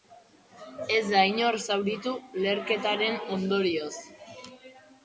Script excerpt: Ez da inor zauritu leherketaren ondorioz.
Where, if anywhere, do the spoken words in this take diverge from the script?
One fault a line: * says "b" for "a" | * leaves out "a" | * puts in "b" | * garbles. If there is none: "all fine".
all fine